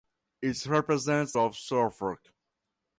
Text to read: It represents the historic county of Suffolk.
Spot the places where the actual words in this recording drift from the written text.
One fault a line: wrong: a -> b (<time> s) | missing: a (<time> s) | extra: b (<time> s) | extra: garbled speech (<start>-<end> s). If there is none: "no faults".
missing: the historic county (1.3 s)